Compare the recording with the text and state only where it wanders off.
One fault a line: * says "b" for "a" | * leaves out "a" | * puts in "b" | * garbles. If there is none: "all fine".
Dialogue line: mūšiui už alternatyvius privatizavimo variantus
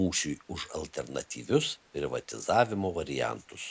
all fine